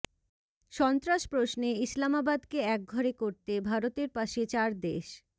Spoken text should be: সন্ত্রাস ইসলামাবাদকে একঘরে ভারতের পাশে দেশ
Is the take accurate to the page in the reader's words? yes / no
no